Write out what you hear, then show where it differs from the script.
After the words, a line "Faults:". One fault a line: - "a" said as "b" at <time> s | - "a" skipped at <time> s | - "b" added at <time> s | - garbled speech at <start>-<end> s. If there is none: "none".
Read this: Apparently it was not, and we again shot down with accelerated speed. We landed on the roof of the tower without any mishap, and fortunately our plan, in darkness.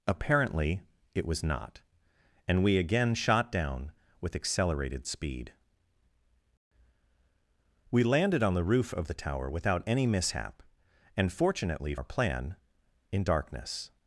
Apparently it was not, and we again shot down with accelerated speed. We landed on the roof of the tower without any mishap, and fortunately our plan, in darkness.
Faults:
none